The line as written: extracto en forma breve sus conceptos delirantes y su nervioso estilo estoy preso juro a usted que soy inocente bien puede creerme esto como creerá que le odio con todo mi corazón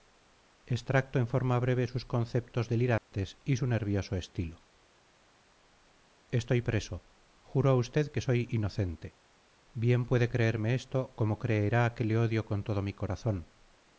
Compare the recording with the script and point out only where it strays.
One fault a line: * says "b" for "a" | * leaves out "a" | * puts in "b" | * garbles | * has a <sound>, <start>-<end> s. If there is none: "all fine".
* has a dropout, 3.0-3.1 s